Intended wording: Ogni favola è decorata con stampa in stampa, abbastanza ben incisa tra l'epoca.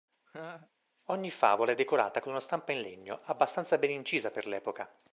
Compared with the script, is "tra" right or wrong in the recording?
wrong